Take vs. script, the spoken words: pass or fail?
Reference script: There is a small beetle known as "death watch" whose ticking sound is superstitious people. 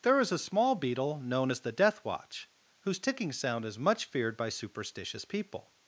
fail